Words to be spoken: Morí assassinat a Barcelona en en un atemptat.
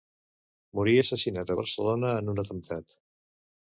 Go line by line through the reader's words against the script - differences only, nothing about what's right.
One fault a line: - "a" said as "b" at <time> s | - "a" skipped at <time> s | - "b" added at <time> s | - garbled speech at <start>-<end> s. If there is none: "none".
- "en" skipped at 2.3 s